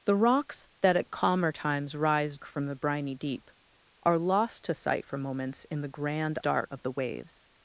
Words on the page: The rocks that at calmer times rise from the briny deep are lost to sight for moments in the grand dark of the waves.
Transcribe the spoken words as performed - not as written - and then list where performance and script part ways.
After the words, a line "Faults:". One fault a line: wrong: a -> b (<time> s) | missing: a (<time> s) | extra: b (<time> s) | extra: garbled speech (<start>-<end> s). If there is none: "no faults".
The rocks that at calmer times rise from the briny deep are lost to sight for moments in the grand dark of the waves.
Faults:
no faults